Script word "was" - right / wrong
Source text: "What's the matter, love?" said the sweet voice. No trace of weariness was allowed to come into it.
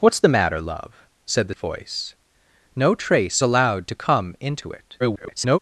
wrong